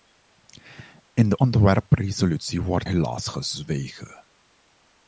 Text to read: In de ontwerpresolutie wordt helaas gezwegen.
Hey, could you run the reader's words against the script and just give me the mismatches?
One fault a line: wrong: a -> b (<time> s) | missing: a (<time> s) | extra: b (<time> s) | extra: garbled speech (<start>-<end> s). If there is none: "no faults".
no faults